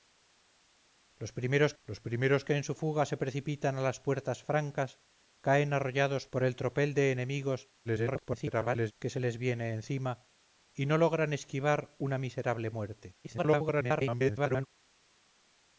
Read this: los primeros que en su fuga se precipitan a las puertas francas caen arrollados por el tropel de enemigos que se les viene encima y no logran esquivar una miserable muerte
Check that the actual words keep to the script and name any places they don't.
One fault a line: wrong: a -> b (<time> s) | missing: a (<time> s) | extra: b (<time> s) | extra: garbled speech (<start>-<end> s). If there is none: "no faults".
extra: los primeros (1.8 s)
extra: garbled speech (7.8-8.9 s)
extra: garbled speech (13.2-14.7 s)